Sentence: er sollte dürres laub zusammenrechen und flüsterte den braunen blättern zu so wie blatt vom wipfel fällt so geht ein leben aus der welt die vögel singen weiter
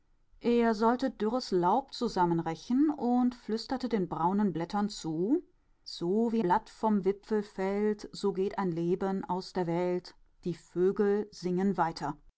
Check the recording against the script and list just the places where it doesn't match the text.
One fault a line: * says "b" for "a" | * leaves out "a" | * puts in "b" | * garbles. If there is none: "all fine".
all fine